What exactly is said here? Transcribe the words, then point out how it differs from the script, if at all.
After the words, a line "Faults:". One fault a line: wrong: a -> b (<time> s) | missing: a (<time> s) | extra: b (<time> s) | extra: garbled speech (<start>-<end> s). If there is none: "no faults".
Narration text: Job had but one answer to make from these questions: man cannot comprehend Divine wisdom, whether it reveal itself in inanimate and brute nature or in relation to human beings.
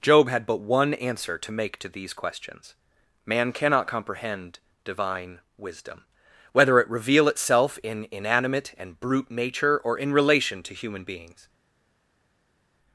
Job had but one answer to make to these questions: man cannot comprehend Divine wisdom, whether it reveal itself in inanimate and brute nature or in relation to human beings.
Faults:
wrong: from -> to (1.8 s)